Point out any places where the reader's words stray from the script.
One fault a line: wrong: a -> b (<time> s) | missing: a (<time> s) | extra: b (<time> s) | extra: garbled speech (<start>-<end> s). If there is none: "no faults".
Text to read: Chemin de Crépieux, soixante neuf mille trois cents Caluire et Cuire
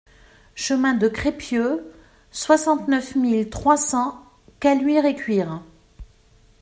no faults